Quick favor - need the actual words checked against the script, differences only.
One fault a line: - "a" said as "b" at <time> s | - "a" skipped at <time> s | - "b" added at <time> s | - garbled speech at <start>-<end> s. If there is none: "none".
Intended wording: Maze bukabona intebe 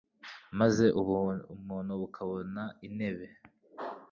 - "ubumuntu" added at 1.0 s